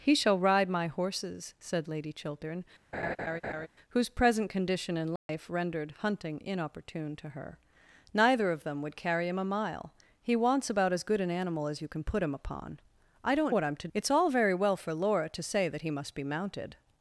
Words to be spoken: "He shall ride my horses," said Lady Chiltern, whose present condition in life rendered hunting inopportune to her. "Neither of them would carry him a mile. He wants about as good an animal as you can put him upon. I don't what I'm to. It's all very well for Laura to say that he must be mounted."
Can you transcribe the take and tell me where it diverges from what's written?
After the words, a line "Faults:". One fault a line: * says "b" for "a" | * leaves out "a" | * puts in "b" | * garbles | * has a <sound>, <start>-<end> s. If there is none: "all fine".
"He shall ride my horses," said Lady Chiltern, whose present condition in life rendered hunting inopportune to her. "Neither of them would carry him a mile. He wants about as good an animal as you can put him upon. I don't what I'm to. It's all very well for Laura to say that he must be mounted."
Faults:
* has a laugh, 2.9-3.7 s
* has a dropout, 5.2-5.3 s